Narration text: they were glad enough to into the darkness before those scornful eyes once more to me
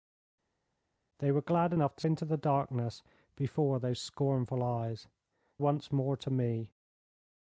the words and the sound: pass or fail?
pass